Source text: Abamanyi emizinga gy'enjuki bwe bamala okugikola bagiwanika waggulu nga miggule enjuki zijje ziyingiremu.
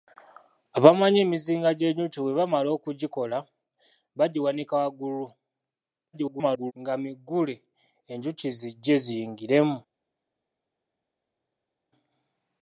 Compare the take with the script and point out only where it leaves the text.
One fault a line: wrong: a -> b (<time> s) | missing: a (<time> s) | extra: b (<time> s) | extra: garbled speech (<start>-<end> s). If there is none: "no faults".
extra: garbled speech (6.1-6.7 s)